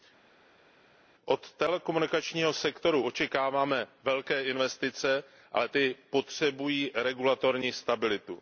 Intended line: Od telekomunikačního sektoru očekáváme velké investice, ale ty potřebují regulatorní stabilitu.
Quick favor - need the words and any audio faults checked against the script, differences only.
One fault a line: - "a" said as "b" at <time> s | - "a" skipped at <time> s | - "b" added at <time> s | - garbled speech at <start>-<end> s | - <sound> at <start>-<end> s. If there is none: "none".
none